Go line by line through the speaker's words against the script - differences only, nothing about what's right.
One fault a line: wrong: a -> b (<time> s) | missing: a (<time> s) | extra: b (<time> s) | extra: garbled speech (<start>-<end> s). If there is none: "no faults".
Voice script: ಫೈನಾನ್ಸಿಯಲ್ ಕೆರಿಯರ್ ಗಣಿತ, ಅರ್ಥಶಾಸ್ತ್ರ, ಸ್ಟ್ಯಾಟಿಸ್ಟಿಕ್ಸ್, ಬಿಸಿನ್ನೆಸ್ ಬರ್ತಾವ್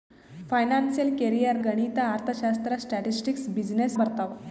no faults